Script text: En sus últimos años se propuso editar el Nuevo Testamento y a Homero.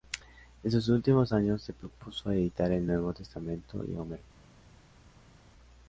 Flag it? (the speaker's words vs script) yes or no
no